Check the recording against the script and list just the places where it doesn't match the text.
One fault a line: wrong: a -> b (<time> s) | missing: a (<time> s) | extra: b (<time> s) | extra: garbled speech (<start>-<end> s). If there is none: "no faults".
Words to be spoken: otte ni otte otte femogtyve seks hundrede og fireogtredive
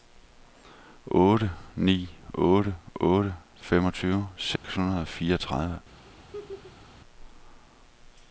no faults